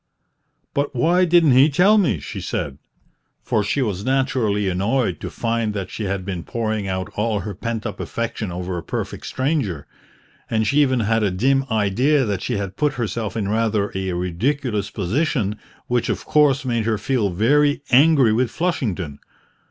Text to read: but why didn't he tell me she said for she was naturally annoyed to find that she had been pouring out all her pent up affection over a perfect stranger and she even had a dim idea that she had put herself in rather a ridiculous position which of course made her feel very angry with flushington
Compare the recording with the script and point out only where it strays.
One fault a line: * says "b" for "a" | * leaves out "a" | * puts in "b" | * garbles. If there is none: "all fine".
all fine